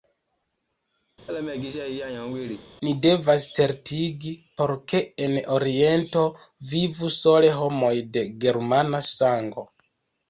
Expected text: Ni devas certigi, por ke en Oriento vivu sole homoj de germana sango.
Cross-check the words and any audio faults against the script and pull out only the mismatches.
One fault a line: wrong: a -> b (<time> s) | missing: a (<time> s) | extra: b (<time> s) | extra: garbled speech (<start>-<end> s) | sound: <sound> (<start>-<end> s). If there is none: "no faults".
sound: laugh (1.3-2.7 s)